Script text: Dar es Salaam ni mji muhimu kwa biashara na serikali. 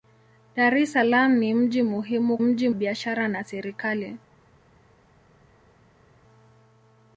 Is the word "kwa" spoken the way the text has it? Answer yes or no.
no